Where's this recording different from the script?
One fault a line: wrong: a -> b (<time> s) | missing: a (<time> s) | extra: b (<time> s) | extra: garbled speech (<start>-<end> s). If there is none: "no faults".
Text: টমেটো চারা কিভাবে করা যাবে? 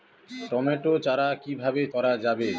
no faults